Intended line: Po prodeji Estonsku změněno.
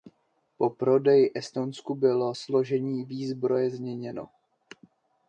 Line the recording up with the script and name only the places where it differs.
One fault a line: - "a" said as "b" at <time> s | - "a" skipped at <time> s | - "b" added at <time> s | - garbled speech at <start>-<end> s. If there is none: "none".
- "bylo složení výzbroje" added at 1.9 s